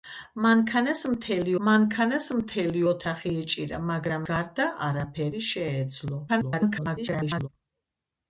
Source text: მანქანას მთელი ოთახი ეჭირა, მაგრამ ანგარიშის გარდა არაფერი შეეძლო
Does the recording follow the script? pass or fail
fail